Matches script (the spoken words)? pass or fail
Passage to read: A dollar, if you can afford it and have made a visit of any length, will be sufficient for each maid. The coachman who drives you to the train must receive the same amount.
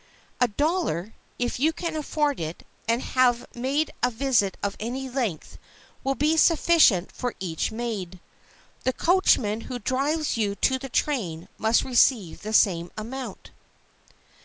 pass